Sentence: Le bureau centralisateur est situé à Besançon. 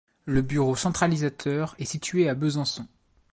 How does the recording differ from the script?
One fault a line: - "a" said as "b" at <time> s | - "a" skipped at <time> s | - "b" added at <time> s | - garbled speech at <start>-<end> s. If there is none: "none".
none